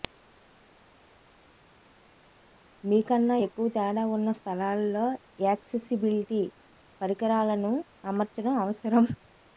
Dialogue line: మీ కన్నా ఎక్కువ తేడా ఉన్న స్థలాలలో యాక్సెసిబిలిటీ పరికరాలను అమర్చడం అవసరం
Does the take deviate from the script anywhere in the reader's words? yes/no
no